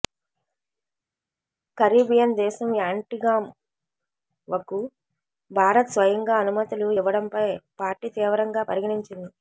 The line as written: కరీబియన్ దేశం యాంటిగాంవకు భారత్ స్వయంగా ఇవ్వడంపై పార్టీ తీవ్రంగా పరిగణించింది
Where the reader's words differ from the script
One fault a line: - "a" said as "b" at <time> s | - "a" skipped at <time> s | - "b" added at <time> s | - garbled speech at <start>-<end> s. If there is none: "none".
- "అనుమతులు" added at 6.4 s